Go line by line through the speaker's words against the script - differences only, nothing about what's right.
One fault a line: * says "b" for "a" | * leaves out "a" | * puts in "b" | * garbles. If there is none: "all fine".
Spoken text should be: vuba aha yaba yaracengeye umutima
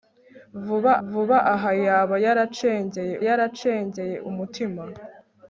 * puts in "vuba"
* puts in "yaracengeye"